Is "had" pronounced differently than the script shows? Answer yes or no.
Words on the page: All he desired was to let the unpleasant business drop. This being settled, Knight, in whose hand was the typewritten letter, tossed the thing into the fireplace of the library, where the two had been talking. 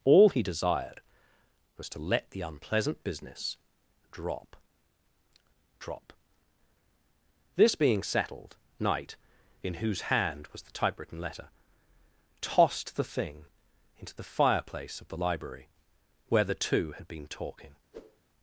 no